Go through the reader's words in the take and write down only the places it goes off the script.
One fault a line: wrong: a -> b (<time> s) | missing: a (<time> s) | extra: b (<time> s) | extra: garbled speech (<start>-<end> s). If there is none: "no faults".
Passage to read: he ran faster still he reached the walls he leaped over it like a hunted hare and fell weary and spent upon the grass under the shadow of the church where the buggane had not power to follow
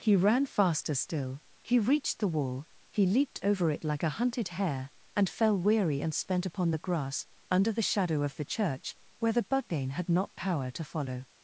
wrong: walls -> wall (2.3 s)